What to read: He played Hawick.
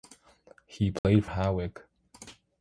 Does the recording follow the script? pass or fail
pass